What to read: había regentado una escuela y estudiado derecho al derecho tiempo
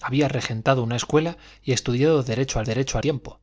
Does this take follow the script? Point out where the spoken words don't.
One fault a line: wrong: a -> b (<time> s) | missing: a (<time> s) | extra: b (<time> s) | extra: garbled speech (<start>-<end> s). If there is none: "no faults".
no faults